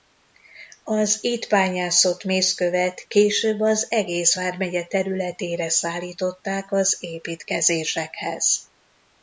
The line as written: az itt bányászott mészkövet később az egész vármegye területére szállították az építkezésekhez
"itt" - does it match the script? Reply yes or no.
yes